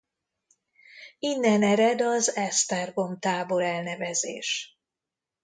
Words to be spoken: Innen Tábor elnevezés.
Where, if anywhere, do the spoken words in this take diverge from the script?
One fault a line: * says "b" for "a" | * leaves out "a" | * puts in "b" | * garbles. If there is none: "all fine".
* puts in "ered az Esztergom"